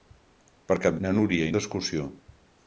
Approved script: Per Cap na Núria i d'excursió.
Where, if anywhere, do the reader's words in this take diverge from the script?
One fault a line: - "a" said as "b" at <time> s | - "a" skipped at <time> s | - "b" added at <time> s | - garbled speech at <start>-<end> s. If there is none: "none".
none